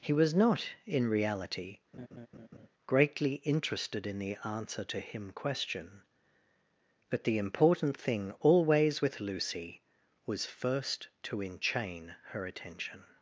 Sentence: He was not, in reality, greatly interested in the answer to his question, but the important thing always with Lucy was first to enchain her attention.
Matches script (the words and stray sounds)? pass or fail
fail